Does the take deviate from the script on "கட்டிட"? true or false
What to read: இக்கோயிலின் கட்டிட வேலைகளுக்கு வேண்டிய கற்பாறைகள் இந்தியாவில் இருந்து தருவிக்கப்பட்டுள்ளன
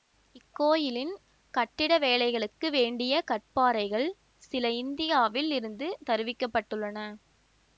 false